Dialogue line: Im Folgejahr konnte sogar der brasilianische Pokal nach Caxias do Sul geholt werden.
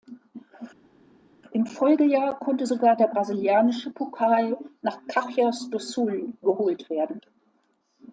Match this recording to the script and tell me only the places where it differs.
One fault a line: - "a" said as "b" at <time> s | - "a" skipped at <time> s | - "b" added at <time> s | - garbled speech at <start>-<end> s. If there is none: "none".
none